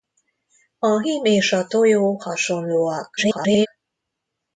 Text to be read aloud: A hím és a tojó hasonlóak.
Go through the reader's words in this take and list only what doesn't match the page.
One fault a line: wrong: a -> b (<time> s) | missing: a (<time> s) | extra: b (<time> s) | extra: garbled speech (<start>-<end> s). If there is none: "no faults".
extra: garbled speech (3.2-3.7 s)